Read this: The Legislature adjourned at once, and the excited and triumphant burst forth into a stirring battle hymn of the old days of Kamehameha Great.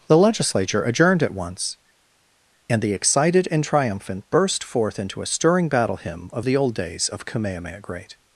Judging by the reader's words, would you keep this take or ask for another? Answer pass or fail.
pass